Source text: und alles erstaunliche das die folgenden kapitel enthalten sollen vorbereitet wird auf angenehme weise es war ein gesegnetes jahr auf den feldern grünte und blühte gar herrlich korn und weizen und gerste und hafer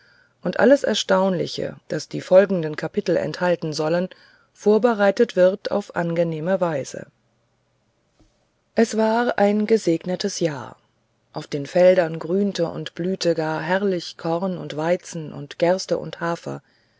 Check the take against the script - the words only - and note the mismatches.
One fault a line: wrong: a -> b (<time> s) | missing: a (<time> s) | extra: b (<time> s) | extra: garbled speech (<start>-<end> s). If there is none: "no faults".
no faults